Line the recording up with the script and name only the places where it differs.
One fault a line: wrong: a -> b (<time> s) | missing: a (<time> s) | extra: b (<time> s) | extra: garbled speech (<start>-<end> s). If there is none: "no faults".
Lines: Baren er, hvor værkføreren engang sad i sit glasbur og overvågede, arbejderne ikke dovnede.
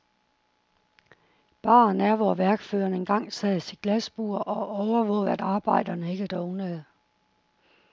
extra: at (5.3 s)